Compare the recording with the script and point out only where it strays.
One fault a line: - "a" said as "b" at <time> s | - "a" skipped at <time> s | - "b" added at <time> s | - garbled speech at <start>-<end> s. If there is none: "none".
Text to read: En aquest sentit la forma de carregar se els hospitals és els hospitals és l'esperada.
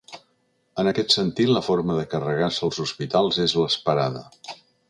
- "els hospitals és" skipped at 3.5 s